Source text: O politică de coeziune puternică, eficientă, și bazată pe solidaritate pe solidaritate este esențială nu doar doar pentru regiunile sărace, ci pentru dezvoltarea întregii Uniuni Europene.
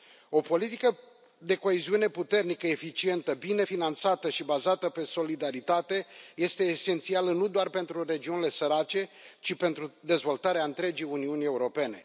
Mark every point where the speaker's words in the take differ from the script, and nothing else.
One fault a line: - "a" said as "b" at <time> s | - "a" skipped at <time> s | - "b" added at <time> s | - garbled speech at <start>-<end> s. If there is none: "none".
- "bine finanțată" added at 3.3 s
- "pe solidaritate" skipped at 6.1 s
- "doar" skipped at 7.7 s